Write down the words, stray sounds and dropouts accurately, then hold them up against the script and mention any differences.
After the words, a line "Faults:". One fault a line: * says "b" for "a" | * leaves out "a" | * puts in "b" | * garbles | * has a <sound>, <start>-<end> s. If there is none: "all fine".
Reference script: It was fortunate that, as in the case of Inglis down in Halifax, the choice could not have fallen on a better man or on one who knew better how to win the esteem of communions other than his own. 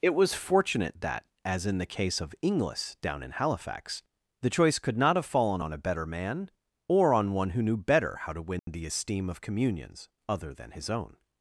It was fortunate that, as in the case of Inglis down in Halifax, the choice could not have fallen on a better man or on one who knew better how to win the esteem of communions other than his own.
Faults:
* has a dropout, 8.6-8.7 s